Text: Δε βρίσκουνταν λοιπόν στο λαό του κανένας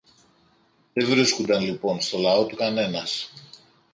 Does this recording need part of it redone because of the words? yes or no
no